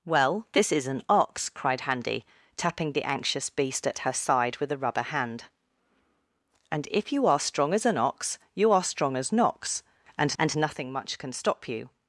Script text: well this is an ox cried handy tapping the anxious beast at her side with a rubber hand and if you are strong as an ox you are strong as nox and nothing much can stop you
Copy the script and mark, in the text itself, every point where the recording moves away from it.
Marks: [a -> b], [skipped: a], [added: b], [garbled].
well this is an ox cried handy tapping the anxious beast at her side with a rubber hand and if you are strong as an ox you are strong as nox and [added: and] nothing much can stop you